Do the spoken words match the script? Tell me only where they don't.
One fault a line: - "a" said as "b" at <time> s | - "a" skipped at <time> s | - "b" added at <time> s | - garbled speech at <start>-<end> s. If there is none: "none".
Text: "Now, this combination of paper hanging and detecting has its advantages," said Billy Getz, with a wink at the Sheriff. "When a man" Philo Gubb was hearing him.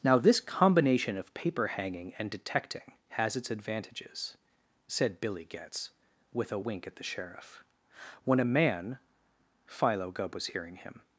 none